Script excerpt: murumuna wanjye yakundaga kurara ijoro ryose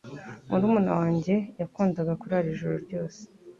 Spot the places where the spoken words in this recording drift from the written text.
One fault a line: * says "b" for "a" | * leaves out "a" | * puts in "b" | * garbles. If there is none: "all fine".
all fine